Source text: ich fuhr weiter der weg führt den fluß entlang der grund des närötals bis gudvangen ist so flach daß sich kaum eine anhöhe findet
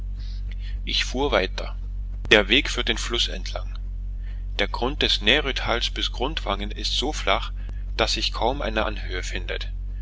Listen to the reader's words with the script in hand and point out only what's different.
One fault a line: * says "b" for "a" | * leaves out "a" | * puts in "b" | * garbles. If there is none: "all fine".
all fine